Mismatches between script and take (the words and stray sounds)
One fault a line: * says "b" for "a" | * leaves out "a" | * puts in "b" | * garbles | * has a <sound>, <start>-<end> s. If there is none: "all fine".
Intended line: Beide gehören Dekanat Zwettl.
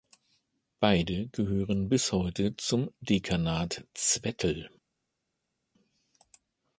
* puts in "bis heute zum"